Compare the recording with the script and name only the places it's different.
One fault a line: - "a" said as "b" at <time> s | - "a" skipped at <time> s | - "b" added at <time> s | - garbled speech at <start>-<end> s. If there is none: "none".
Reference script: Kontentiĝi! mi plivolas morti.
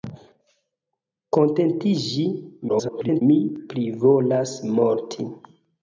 - garbled speech at 2.7-3.2 s